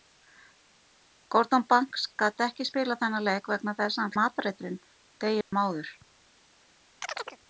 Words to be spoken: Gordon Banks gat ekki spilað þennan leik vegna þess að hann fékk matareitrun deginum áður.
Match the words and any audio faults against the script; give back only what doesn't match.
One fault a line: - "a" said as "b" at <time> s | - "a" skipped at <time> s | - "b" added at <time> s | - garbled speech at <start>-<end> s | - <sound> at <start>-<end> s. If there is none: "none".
- "fékk" skipped at 4.2 s
- dropout at 5.4-5.5 s
- chirp at 7.0-7.4 s